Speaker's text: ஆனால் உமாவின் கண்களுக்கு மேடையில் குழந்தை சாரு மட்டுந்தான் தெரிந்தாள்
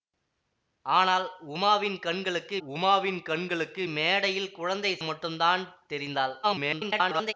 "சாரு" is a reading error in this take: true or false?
true